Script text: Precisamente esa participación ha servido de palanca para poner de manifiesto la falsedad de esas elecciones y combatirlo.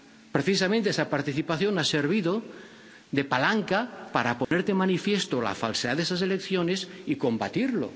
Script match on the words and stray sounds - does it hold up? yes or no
no